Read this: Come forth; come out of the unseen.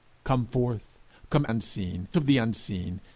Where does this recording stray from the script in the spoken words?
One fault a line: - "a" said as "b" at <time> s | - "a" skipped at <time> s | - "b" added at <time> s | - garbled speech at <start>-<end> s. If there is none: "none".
- "out" said as "unseen" at 1.5 s